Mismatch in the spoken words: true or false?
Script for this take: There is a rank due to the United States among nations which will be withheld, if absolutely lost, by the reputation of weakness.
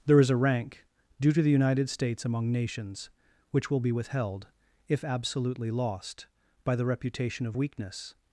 false